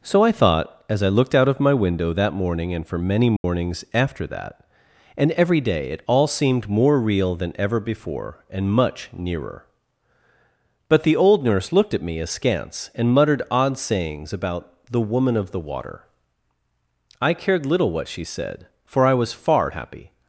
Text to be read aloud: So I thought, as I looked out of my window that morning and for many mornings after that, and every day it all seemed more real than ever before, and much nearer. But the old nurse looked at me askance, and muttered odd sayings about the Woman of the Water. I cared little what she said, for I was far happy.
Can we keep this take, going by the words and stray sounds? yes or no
no